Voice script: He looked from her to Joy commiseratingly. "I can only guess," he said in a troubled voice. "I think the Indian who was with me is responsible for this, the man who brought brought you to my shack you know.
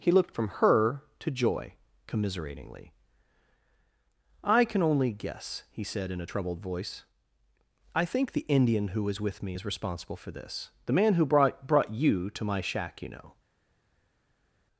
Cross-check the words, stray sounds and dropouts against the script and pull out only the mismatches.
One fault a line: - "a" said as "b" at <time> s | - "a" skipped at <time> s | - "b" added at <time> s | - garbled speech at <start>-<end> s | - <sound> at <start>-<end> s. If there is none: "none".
none